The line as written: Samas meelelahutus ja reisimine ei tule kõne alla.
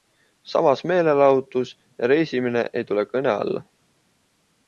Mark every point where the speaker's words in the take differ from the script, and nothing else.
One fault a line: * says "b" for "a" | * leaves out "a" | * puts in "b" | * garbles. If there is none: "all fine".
all fine